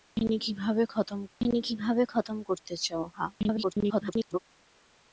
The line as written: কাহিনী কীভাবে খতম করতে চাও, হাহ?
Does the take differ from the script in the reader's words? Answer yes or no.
yes